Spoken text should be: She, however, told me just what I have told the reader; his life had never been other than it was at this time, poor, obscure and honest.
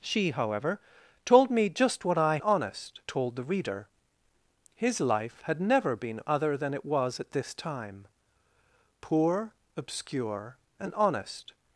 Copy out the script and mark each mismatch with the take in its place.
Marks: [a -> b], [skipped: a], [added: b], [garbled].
She, however, told me just what I [have -> honest] told the reader; his life had never been other than it was at this time, poor, obscure and honest.